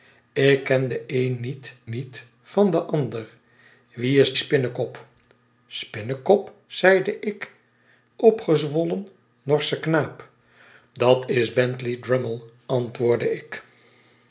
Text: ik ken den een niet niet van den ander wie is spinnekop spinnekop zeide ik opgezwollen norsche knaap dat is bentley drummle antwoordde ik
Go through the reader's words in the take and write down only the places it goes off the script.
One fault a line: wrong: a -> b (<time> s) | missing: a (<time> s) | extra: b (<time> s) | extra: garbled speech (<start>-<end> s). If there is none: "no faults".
no faults